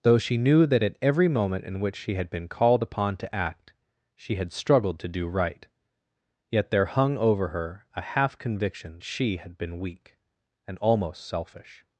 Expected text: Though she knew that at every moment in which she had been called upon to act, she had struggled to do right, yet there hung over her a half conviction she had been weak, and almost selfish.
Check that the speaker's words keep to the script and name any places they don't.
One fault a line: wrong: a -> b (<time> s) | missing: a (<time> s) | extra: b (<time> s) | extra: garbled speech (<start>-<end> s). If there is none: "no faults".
no faults